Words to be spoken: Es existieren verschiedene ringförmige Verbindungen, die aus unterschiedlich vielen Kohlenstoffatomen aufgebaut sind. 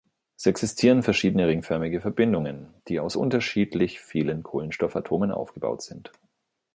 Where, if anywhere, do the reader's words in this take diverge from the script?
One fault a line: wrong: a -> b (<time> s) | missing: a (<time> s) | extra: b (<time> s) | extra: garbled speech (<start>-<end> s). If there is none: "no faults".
no faults